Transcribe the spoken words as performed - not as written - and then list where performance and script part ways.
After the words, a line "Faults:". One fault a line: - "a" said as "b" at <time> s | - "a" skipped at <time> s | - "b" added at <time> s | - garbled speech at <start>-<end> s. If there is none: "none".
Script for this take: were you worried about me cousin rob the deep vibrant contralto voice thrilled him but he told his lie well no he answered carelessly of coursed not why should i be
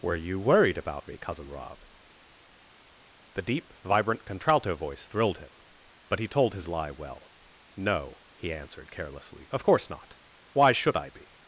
were you worried about me cousin rob the deep vibrant contralto voice thrilled him but he told his lie well no he answered carelessly of course not why should i be
Faults:
- "coursed" said as "course" at 9.6 s